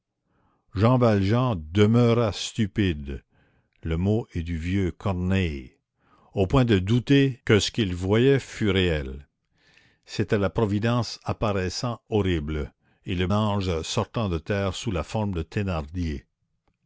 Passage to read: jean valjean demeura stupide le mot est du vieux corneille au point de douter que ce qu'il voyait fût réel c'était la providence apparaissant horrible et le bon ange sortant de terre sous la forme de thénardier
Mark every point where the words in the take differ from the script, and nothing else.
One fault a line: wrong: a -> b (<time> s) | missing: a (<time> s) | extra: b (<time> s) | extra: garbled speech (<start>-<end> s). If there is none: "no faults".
missing: bon (13.3 s)